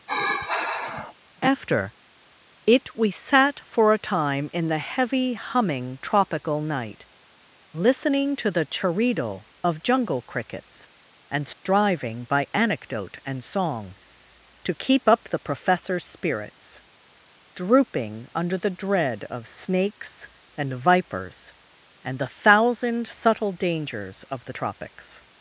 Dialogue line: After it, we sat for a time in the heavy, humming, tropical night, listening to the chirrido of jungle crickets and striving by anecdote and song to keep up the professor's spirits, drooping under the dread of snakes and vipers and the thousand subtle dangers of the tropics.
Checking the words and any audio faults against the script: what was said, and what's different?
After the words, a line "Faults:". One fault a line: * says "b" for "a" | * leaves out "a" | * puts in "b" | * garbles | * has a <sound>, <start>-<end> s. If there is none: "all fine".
After it, we sat for a time in the heavy, humming, tropical night, listening to the chirrido of jungle crickets and striving by anecdote and song to keep up the professor's spirits, drooping under the dread of snakes and vipers and the thousand subtle dangers of the tropics.
Faults:
* has a sigh, 0.1-1.1 s
* has a dropout, 11.5-11.7 s